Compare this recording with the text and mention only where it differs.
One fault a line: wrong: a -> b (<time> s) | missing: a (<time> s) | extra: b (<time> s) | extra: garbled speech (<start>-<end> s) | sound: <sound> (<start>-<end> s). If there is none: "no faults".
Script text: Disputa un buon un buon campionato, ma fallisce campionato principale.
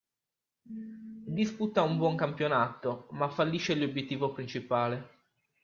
missing: un buon (2.1 s)
wrong: campionato -> l'obiettivo (3.8 s)